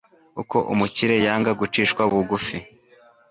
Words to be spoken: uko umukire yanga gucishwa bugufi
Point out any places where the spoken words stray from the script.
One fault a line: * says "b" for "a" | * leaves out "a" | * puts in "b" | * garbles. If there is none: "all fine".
all fine